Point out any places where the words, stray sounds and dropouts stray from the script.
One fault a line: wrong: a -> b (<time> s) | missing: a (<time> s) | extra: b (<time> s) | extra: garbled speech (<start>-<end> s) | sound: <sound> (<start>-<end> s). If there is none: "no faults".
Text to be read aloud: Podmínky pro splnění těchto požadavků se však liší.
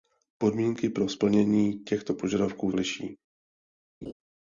missing: se však (2.7 s)
sound: laugh (4.0-4.1 s)